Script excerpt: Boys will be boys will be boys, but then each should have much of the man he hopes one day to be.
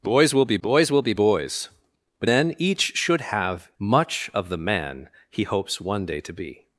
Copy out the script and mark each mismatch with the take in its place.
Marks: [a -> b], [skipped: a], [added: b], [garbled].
Boys will be boys will be boys, but then each should have much of the man he hopes one day to be.